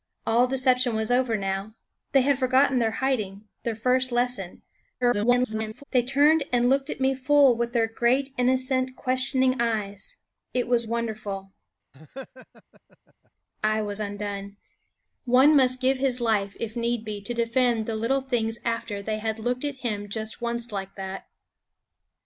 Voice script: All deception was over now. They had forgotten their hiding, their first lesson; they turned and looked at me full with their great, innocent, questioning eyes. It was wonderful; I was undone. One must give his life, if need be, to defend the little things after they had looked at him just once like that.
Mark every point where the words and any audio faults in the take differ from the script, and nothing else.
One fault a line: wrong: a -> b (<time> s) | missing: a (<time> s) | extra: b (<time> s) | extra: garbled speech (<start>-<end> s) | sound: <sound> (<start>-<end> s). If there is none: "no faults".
extra: garbled speech (5.0-5.8 s)
sound: laugh (11.9-13.3 s)